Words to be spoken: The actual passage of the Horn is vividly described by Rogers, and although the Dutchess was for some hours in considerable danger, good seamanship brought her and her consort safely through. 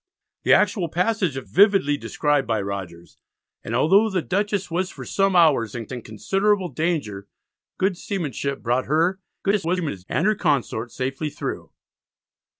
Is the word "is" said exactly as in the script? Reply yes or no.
no